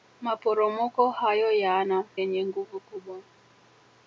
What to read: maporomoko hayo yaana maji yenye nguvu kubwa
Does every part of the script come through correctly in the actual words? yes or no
no